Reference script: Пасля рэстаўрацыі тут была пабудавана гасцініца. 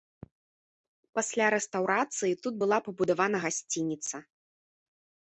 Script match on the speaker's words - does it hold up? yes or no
yes